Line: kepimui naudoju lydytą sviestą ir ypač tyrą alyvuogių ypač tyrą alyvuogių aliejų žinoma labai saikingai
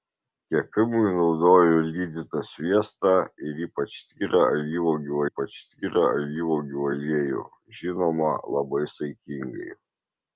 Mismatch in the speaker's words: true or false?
false